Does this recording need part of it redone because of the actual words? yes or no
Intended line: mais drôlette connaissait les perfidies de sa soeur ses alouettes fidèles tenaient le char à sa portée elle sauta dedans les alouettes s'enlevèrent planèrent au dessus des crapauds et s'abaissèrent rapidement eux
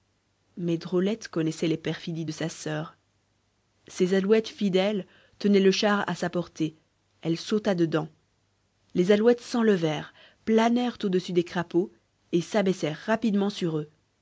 yes